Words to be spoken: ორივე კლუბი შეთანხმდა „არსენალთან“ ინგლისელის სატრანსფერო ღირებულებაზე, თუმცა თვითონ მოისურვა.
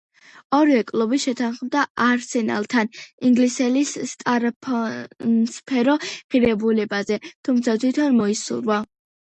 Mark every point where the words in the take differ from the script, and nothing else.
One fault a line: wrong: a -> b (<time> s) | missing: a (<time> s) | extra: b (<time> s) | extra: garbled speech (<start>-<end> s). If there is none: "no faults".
no faults